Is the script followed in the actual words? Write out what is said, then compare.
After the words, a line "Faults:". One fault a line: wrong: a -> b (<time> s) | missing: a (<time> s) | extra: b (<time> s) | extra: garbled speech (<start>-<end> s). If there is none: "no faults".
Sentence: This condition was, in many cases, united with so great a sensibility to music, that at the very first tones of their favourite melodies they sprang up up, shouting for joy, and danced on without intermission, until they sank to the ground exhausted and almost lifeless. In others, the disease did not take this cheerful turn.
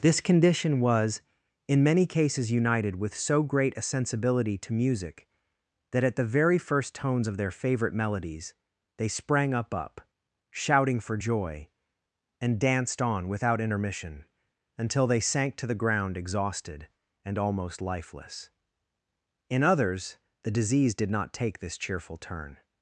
This condition was, in many cases, united with so great a sensibility to music, that at the very first tones of their favourite melodies they sprang up up, shouting for joy, and danced on without intermission, until they sank to the ground exhausted and almost lifeless. In others, the disease did not take this cheerful turn.
Faults:
no faults